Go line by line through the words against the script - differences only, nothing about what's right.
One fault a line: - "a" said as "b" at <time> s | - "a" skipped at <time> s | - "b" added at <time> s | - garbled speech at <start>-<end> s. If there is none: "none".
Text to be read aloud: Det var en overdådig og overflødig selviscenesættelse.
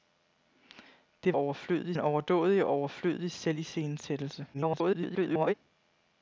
- "var" said as "overflødig" at 1.4 s
- garbled speech at 4.5-5.5 s